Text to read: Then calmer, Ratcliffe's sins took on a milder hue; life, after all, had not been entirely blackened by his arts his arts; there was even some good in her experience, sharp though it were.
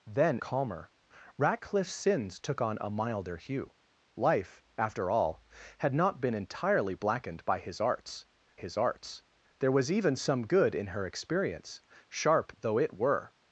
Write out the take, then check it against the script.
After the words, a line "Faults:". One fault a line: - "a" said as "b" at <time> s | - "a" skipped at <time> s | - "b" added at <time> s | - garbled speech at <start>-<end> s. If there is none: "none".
Then calmer, Ratcliffe's sins took on a milder hue; life, after all, had not been entirely blackened by his arts his arts; there was even some good in her experience, sharp though it were.
Faults:
none